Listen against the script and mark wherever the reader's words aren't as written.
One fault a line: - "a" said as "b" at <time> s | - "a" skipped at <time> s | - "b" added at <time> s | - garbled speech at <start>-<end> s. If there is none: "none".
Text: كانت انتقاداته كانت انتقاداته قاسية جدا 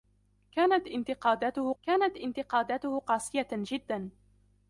none